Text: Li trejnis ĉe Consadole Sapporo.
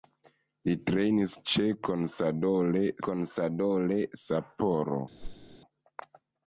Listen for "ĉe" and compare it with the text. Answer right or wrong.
right